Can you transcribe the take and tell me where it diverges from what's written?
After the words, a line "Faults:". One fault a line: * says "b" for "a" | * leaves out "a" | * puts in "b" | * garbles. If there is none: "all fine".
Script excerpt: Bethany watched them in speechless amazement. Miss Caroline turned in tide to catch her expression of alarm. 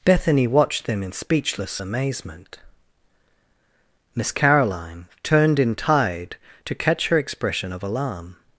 Bethany watched them in speechless amazement. Miss Caroline turned in tide to catch her expression of alarm.
Faults:
all fine